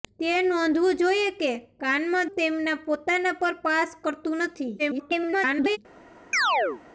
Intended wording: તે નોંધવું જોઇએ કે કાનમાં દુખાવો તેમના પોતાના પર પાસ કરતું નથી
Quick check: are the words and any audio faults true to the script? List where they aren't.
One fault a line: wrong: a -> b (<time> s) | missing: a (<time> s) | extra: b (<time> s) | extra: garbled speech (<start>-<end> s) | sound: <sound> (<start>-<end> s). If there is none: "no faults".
missing: દુખાવો (2.3 s)
extra: garbled speech (4.8-5.8 s)
sound: chirp (6.3-6.8 s)